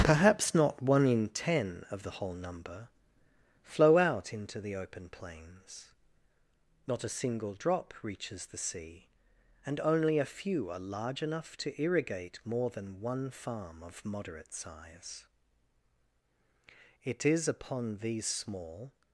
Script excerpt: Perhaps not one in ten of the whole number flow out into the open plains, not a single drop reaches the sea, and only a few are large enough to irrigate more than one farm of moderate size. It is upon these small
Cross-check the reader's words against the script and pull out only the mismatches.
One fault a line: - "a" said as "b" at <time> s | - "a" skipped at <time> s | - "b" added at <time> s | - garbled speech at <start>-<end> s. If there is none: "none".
none